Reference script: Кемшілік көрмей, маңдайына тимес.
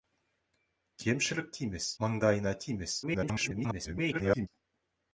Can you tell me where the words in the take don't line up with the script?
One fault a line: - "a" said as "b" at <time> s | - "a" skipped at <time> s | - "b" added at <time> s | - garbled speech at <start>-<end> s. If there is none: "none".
- "көрмей" said as "тимес" at 1.6 s
- garbled speech at 3.0-4.5 s